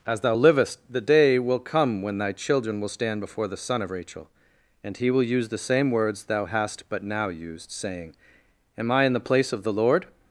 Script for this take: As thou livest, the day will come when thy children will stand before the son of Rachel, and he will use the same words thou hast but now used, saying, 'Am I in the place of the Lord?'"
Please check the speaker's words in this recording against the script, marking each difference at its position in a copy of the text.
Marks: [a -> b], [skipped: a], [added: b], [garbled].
As thou livest, the day will come when thy children will stand before the son of Rachel, and he will use the same words thou hast but now used, saying, 'Am I in the place of the Lord?'"